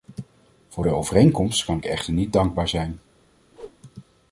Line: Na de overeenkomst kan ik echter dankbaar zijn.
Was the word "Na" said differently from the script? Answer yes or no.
yes